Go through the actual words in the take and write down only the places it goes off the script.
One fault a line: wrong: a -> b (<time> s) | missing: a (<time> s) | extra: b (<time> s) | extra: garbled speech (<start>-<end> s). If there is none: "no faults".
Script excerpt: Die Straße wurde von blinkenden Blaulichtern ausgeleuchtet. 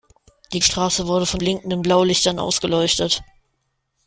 no faults